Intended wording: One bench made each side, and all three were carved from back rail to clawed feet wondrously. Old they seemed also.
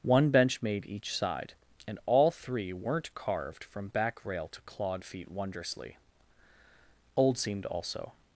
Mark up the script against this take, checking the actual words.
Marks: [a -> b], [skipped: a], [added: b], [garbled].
One bench made each side, and all three [were -> weren't] carved from back rail to clawed feet wondrously. Old [skipped: they] seemed also.